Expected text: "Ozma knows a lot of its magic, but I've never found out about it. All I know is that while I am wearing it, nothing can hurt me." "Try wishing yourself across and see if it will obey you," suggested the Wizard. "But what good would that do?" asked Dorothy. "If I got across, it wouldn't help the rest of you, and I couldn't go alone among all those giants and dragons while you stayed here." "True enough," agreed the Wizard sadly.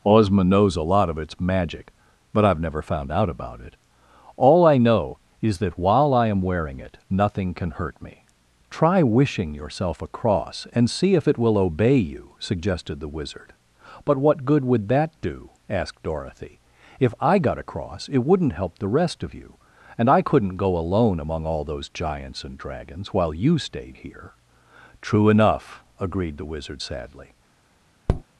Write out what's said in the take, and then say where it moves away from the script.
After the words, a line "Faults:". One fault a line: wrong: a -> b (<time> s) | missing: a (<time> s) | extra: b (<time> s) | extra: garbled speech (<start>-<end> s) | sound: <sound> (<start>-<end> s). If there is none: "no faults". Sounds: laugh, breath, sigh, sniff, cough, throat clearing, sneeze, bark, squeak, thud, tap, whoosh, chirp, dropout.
"Ozma knows a lot of its magic, but I've never found out about it. All I know is that while I am wearing it, nothing can hurt me." "Try wishing yourself across and see if it will obey you," suggested the Wizard. "But what good would that do?" asked Dorothy. "If I got across, it wouldn't help the rest of you, and I couldn't go alone among all those giants and dragons while you stayed here." "True enough," agreed the Wizard sadly.
Faults:
sound: tap (28.1-28.2 s)